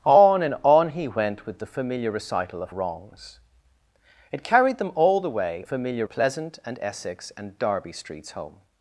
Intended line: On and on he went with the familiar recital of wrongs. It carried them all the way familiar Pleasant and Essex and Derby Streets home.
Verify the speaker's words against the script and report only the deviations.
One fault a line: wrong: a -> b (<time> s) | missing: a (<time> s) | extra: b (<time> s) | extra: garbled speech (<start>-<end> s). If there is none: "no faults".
no faults